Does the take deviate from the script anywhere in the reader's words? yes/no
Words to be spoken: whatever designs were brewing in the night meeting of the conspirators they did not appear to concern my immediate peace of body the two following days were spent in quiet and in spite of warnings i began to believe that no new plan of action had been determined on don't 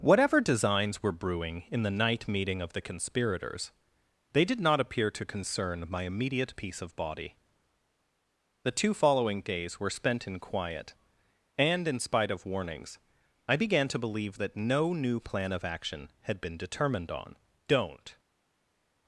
no